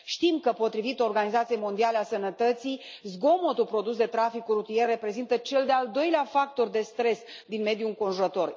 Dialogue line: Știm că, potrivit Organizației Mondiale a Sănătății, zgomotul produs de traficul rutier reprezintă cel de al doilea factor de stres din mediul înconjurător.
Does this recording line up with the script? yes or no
yes